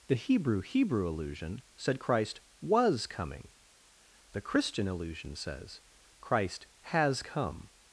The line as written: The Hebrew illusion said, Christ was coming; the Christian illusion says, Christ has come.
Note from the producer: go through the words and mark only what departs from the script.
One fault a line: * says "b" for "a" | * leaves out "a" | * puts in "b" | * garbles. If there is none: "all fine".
* puts in "Hebrew"